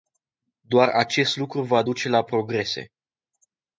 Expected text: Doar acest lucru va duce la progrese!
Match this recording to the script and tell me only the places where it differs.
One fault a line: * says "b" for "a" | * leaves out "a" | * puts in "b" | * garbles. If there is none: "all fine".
all fine